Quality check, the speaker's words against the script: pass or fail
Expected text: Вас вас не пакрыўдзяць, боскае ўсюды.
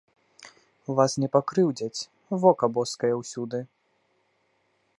fail